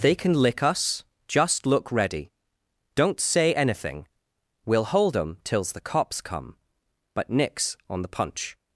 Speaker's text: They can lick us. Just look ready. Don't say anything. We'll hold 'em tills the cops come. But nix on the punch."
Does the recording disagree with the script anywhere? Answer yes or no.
no